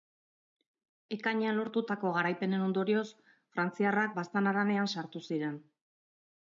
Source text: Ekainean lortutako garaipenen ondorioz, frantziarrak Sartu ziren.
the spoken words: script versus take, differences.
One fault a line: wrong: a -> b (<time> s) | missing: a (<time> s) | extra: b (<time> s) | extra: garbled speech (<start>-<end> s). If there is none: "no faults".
extra: Baztan haranean (4.2 s)